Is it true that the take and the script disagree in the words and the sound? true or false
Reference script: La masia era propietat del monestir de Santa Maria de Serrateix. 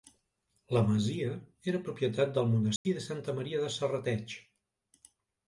true